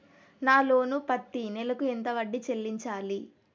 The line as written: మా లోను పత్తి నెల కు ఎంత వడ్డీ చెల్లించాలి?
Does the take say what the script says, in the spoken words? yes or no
no